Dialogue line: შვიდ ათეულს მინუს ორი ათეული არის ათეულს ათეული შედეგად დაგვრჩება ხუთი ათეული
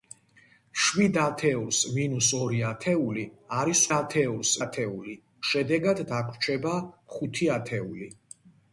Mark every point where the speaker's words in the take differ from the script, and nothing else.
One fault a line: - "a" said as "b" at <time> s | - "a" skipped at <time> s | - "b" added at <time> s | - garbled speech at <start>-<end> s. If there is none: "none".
none